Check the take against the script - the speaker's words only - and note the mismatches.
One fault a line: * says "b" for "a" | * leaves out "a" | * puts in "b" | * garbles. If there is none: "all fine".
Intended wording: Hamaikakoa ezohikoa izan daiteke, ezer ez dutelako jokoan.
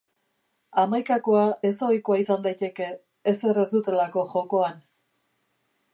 all fine